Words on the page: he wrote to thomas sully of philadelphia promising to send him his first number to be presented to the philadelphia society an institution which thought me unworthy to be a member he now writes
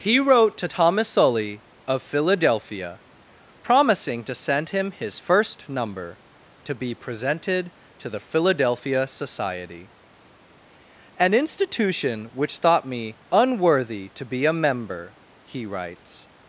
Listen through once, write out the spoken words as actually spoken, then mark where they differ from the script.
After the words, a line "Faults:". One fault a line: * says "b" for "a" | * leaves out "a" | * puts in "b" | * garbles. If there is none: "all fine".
he wrote to thomas sully of philadelphia promising to send him his first number to be presented to the philadelphia society an institution which thought me unworthy to be a member he writes
Faults:
* leaves out "now"